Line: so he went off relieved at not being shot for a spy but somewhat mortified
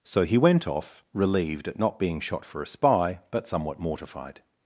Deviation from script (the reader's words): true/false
false